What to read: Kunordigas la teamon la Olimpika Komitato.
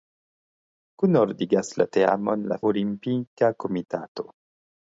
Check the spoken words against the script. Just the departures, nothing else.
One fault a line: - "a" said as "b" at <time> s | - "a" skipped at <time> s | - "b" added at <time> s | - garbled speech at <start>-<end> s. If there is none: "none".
none